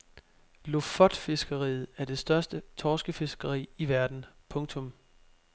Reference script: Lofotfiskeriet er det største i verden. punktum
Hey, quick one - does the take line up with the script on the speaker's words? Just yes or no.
no